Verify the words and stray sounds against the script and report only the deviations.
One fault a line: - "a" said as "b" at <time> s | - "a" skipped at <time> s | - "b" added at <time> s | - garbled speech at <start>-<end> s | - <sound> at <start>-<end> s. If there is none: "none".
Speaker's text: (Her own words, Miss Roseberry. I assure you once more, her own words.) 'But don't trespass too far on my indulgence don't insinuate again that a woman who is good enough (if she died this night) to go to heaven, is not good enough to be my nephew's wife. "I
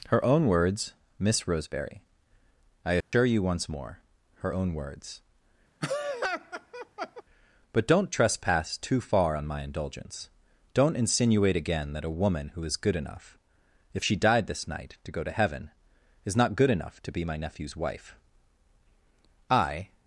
- dropout at 3.0-3.1 s
- laugh at 5.8-7.2 s